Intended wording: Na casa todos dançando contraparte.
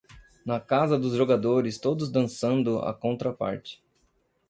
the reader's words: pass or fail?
fail